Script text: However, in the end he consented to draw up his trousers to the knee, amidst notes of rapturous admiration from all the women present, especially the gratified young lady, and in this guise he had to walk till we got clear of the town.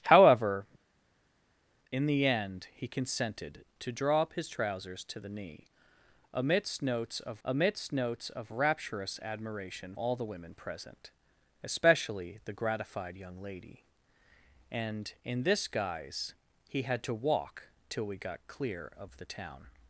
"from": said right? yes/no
no